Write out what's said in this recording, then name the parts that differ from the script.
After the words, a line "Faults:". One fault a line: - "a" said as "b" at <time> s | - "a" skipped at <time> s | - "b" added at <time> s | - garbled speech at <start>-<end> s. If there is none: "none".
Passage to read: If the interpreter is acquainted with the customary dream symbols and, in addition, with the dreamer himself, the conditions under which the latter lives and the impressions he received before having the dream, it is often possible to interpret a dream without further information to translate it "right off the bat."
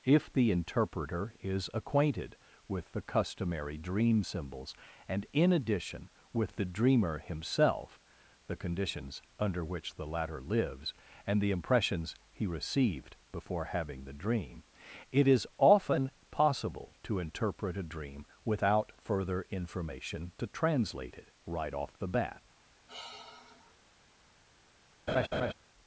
If the interpreter is acquainted with the customary dream symbols and, in addition, with the dreamer himself, the conditions under which the latter lives and the impressions he received before having the dream, it is often possible to interpret a dream without further information to translate it "right off the bat."
Faults:
none